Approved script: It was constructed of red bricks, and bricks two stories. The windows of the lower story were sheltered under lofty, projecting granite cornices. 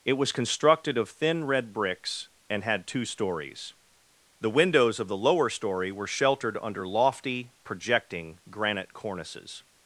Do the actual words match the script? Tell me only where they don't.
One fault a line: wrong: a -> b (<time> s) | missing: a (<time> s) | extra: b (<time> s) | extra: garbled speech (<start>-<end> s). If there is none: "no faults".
extra: thin (1.1 s)
wrong: bricks -> had (2.6 s)